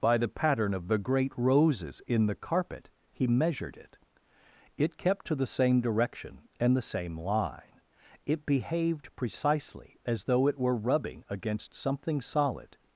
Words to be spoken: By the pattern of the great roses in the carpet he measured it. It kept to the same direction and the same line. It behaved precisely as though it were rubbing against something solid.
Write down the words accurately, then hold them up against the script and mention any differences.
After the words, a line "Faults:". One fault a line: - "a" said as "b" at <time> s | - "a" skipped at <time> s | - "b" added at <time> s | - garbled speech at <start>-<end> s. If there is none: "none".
By the pattern of the great roses in the carpet he measured it. It kept to the same direction and the same line. It behaved precisely as though it were rubbing against something solid.
Faults:
none